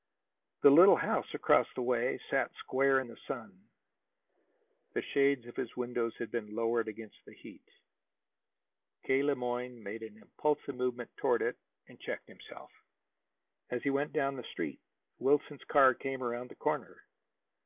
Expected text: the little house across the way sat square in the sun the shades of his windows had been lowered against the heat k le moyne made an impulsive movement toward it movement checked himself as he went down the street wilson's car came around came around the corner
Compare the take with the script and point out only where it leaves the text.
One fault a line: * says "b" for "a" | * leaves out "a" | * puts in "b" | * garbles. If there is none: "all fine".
* says "and" for "movement"
* leaves out "came around"